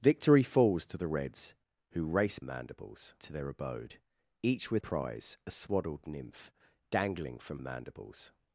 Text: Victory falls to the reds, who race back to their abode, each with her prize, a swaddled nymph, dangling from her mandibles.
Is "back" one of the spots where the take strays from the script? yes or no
yes